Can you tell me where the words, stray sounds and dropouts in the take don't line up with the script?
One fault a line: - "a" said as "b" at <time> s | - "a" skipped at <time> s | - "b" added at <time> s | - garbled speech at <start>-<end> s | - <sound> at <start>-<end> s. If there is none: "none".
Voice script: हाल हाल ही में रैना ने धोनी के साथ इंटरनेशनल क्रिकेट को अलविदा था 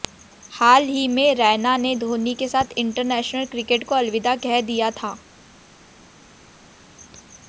- "हाल" skipped at 0.8 s
- "कह दिया" added at 4.4 s